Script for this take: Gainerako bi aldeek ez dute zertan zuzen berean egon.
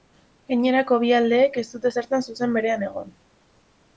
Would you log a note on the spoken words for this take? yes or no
no